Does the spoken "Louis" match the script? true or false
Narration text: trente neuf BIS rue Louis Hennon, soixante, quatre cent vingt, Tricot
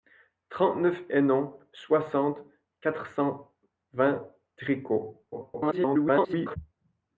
false